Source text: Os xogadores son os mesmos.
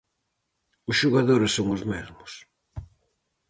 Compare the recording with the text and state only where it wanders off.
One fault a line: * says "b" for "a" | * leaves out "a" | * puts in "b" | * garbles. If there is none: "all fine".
all fine